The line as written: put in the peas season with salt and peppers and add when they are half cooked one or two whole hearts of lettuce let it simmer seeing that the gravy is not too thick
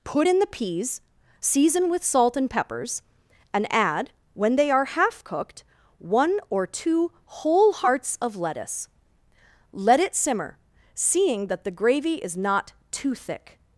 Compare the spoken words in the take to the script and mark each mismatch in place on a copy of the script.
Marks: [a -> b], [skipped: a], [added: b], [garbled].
put in the peas season with salt and peppers and add when they are half cooked one or two whole hearts of lettuce let it simmer seeing that the gravy is not too thick